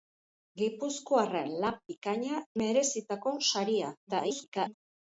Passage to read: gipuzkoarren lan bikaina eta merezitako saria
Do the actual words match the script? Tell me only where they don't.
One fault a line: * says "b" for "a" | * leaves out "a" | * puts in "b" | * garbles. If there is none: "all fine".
* leaves out "eta"
* garbles